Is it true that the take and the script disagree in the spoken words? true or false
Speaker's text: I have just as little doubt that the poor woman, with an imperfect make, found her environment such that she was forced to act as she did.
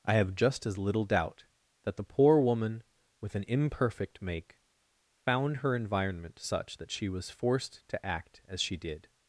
false